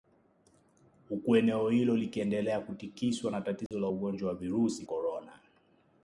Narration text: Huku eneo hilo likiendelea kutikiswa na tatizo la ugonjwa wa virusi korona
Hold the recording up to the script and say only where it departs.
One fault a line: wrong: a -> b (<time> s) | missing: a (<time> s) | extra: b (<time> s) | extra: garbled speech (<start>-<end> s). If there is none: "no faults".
no faults